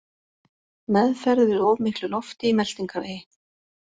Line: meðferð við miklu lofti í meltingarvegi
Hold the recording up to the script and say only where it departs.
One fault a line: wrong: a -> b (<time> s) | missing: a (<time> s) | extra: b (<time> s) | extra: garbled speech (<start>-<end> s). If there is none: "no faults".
extra: of (1.7 s)